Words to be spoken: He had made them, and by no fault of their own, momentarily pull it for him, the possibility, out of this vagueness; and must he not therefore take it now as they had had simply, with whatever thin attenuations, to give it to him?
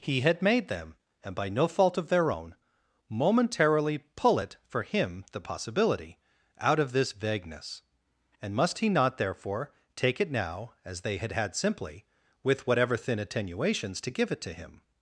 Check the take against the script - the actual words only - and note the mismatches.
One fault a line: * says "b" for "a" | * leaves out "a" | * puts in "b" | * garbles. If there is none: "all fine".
all fine